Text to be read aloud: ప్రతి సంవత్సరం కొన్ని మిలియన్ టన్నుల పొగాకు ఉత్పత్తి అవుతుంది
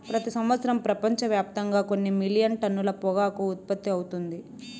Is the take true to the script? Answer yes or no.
no